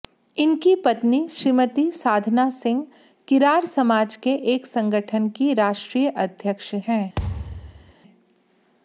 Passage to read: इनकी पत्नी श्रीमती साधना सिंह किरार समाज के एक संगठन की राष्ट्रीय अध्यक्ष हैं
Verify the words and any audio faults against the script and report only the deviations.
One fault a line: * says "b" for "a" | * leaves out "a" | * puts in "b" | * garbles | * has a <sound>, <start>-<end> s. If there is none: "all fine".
* has a thud, 7.2-7.9 s